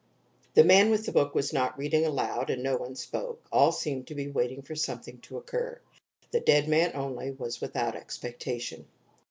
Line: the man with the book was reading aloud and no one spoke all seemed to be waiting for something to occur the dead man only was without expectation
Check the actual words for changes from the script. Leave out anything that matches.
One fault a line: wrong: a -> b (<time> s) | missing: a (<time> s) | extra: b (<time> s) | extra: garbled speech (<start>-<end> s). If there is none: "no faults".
extra: not (1.5 s)